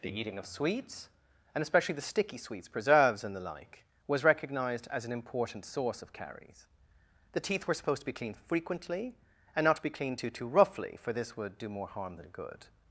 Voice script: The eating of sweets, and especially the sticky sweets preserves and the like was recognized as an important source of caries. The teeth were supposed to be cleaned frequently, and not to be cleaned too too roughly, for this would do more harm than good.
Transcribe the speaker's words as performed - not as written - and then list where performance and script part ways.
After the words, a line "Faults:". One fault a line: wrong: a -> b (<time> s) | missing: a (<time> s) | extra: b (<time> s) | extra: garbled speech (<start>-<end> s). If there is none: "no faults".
The eating of sweets, and especially the sticky sweets preserves and the like was recognized as an important source of caries. The teeth were supposed to be cleaned frequently, and not to be cleaned too too roughly, for this would do more harm than good.
Faults:
no faults